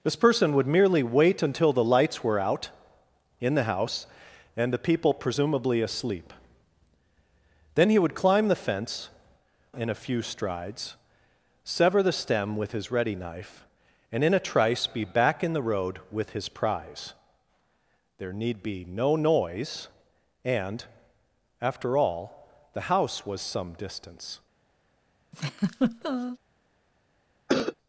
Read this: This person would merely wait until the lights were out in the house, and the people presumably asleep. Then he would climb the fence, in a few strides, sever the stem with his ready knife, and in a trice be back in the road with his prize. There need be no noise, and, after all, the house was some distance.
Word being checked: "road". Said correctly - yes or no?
yes